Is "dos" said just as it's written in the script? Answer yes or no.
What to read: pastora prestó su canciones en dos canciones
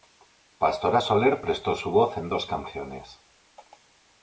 yes